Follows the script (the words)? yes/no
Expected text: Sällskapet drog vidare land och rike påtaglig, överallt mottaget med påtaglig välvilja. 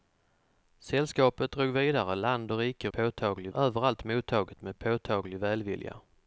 yes